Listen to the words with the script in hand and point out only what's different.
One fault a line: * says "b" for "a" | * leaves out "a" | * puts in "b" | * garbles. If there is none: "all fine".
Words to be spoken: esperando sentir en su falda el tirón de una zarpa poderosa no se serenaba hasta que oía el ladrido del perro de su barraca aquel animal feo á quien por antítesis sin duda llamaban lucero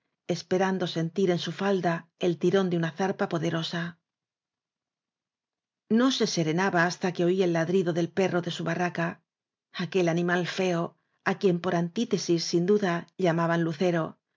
all fine